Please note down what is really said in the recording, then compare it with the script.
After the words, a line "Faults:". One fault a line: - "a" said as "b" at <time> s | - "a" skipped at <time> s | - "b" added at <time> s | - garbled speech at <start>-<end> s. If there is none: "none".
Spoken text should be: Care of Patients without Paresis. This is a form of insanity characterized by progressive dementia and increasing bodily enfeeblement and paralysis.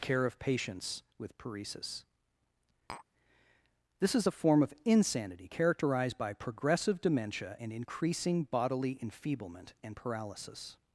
Care of Patients with Paresis. This is a form of insanity characterized by progressive dementia and increasing bodily enfeeblement and paralysis.
Faults:
- "without" said as "with" at 1.2 s